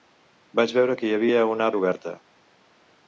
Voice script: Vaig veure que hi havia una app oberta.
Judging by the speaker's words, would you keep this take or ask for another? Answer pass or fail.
fail